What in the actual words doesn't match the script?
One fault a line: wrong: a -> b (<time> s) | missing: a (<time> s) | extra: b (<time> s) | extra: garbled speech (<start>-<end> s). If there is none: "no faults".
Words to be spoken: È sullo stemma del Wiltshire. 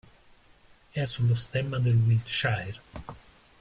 no faults